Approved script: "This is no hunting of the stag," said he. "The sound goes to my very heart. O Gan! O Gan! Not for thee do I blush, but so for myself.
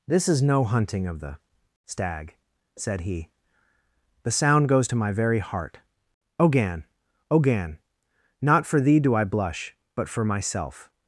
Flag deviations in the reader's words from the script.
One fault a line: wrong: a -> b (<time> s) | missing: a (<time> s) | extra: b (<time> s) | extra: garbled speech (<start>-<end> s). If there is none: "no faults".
missing: so (10.1 s)